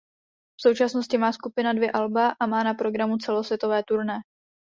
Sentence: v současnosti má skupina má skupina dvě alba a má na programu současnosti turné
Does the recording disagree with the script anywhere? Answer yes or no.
yes